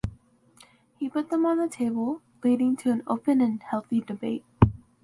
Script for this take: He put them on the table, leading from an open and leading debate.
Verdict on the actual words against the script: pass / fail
fail